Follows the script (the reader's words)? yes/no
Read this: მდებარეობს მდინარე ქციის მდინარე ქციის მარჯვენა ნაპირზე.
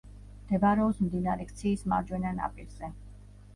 no